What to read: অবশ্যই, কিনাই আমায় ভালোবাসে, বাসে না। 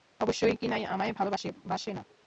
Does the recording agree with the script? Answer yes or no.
yes